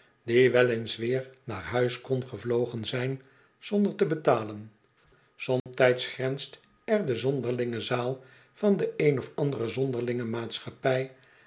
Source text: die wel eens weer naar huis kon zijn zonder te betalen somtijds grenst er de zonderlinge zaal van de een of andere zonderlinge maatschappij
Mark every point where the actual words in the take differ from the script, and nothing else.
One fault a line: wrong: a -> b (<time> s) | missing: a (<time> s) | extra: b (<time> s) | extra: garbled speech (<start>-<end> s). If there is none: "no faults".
extra: gevlogen (2.3 s)